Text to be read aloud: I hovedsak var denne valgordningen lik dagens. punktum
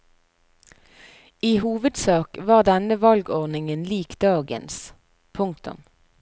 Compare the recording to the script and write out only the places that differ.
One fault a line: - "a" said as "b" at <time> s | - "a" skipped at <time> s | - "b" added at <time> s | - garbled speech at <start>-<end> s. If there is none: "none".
none